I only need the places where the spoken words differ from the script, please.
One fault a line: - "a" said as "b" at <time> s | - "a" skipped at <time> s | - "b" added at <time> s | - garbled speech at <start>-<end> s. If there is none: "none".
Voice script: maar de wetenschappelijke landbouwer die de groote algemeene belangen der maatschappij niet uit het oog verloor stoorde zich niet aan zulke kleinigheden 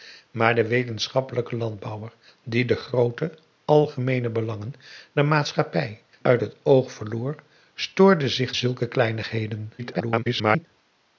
- "niet" skipped at 6.0 s
- "niet aan" skipped at 8.6 s
- garbled speech at 9.8-10.7 s